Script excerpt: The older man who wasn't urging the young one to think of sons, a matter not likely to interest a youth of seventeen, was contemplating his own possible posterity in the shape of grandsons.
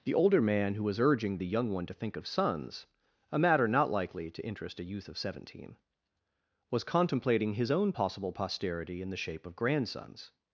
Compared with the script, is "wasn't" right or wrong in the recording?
wrong